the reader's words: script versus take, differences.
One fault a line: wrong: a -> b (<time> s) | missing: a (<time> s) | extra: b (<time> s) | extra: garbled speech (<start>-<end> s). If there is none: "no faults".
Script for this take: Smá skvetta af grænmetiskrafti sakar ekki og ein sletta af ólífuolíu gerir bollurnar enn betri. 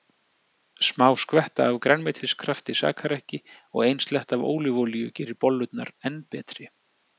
no faults